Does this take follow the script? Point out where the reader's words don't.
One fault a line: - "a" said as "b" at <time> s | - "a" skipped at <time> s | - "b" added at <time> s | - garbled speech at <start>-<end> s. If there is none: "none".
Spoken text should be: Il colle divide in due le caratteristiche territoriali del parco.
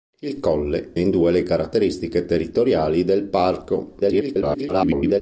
- "divide" skipped at 0.9 s
- garbled speech at 4.0-5.2 s